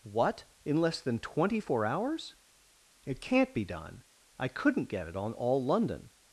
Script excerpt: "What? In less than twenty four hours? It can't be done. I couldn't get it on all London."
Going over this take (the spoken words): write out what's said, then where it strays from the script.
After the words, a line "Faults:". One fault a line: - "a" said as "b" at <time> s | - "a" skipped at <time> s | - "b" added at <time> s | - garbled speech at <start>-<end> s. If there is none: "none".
"What? In less than twenty four hours? It can't be done. I couldn't get it on all London."
Faults:
none